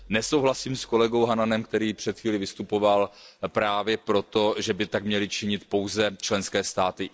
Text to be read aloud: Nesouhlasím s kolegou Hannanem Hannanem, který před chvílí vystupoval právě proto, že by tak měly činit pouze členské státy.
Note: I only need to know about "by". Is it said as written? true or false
true